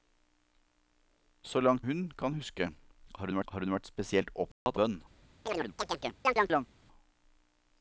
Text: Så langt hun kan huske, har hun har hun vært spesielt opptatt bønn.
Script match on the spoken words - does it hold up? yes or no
yes